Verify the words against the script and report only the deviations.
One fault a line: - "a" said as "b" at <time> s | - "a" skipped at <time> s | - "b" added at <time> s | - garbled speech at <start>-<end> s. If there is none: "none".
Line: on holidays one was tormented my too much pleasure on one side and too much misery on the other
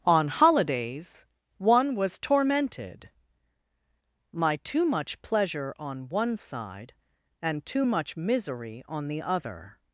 none